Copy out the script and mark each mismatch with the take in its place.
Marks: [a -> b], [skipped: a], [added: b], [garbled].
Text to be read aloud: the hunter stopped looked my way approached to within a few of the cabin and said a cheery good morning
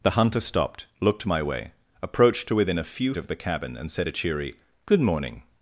the hunter stopped looked my way approached to within a few of the cabin and said a cheery good morning